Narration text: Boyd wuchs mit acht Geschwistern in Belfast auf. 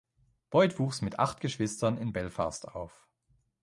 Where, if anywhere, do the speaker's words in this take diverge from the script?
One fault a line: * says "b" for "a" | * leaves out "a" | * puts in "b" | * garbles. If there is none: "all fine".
all fine